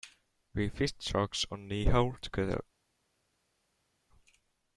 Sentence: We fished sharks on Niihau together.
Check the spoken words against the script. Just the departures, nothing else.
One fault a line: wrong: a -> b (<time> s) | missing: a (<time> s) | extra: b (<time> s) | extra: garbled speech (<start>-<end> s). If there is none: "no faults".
no faults